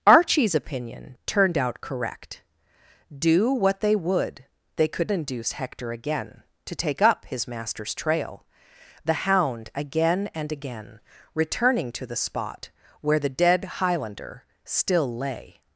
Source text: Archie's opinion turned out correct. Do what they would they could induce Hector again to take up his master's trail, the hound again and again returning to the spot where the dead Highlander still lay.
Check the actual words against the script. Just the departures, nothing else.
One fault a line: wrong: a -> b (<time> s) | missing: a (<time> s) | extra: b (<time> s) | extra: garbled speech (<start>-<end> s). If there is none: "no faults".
no faults